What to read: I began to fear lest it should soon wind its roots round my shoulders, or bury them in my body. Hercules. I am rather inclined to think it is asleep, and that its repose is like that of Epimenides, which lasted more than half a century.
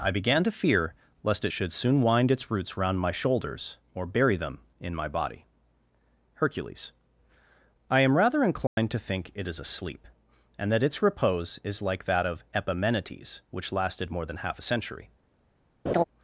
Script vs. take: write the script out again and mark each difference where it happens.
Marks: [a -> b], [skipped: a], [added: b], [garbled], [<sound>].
I began to fear lest it should soon wind its roots round my shoulders, or bury them in my body. Hercules. I am rather inclined [dropout] to think it is asleep, and that its repose is like that of Epimenides, which lasted more than half a century. [laugh]